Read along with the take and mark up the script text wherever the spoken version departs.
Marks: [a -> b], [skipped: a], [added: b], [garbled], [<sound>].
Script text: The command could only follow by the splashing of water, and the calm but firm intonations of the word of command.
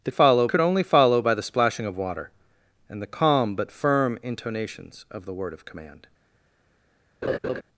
The [command -> follow] could only follow by the splashing of water, and the calm but firm intonations of the word of command. [laugh]